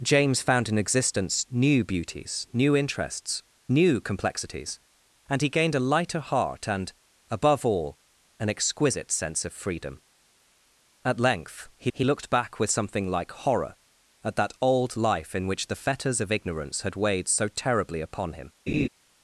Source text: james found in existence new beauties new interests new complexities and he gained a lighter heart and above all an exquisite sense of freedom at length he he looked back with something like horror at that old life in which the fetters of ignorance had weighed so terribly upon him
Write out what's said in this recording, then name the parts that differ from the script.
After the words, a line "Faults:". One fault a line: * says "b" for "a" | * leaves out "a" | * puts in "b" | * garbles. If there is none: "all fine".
james found in existence new beauties new interests new complexities and he gained a lighter heart and above all an exquisite sense of freedom at length he he looked back with something like horror at that old life in which the fetters of ignorance had weighed so terribly upon him
Faults:
all fine